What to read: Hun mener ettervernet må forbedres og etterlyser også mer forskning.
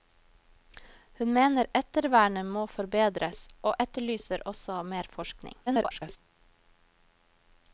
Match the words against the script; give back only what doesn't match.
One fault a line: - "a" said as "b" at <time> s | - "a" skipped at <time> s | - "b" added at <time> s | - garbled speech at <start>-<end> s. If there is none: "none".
- garbled speech at 5.7-6.2 s